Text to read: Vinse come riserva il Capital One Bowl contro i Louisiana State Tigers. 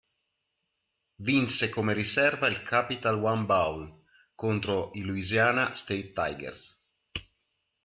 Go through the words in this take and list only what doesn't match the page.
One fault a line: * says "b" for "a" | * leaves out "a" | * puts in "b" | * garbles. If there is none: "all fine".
all fine